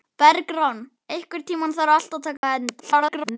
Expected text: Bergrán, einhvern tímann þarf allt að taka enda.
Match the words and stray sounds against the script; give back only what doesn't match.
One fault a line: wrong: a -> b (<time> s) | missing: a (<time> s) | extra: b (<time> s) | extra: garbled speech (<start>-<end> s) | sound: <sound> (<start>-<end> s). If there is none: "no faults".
sound: dropout (2.4-2.4 s)
extra: garbled speech (2.8-3.4 s)